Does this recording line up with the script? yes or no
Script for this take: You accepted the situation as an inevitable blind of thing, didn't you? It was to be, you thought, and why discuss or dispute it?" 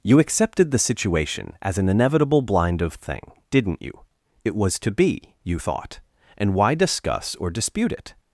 yes